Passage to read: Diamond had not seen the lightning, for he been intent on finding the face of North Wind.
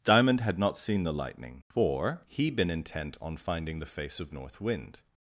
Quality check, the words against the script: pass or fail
pass